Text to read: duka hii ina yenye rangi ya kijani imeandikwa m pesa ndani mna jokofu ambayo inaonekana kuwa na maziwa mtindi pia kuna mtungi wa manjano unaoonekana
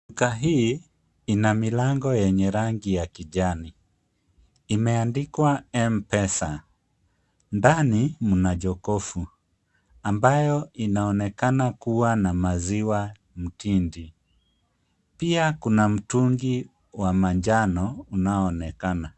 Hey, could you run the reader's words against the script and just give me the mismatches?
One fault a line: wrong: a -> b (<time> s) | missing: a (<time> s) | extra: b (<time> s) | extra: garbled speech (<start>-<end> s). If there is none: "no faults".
extra: milango (1.5 s)